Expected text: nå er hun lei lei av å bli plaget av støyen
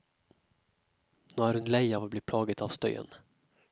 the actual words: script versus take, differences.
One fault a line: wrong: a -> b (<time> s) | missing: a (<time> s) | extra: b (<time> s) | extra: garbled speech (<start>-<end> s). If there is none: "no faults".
missing: lei (1.8 s)